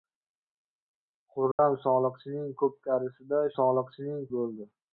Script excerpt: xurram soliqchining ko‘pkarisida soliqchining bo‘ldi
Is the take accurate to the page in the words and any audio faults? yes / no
no